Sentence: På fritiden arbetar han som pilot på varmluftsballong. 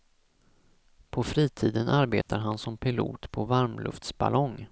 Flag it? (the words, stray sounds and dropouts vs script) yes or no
yes